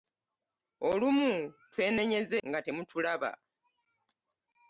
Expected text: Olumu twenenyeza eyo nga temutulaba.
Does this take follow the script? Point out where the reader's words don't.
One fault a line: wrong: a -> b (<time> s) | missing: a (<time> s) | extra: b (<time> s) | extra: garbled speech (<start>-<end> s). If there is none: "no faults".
missing: eyo (2.4 s)